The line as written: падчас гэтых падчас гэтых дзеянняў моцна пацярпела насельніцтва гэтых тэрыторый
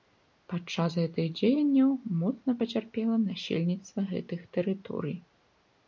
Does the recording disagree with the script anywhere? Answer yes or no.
yes